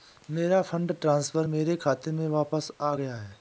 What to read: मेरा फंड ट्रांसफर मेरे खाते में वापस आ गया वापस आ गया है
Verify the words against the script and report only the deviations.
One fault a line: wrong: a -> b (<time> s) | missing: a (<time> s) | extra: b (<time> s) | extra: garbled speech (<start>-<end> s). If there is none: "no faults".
missing: वापस आ गया (3.1 s)